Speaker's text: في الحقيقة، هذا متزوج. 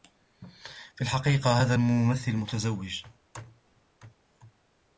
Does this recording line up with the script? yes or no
no